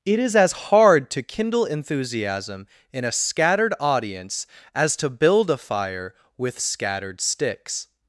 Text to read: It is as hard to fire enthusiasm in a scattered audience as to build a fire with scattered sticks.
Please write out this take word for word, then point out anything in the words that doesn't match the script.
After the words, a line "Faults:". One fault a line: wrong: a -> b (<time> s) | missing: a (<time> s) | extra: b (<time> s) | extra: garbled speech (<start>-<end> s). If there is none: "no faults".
It is as hard to kindle enthusiasm in a scattered audience as to build a fire with scattered sticks.
Faults:
wrong: fire -> kindle (1.2 s)